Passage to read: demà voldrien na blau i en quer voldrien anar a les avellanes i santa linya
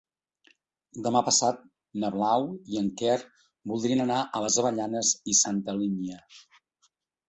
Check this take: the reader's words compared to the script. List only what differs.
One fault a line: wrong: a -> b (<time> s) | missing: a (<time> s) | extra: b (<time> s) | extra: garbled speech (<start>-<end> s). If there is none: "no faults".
wrong: voldrien -> passat (1.3 s)